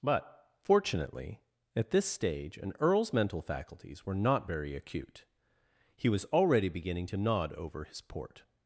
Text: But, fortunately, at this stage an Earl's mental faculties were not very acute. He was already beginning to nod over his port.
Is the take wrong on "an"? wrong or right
right